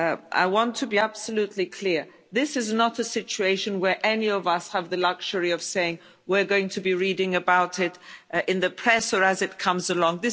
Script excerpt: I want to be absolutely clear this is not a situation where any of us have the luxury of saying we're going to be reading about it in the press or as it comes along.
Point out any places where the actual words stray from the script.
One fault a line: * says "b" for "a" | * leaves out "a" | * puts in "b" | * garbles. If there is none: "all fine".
all fine